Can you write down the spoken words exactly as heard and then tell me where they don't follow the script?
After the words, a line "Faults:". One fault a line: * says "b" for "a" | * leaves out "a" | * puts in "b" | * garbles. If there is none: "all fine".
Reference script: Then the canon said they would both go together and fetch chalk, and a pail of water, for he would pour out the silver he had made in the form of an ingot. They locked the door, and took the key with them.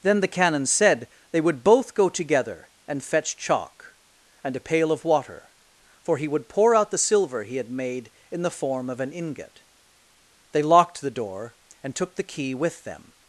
Then the canon said they would both go together and fetch chalk, and a pail of water, for he would pour out the silver he had made in the form of an ingot. They locked the door, and took the key with them.
Faults:
all fine